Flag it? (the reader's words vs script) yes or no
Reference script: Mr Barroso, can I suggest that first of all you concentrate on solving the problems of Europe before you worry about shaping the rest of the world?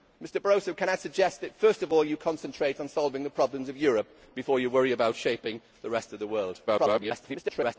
yes